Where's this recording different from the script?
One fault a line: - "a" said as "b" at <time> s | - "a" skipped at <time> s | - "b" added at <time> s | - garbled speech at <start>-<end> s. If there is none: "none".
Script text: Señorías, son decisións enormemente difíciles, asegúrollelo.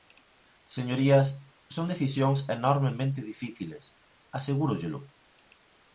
none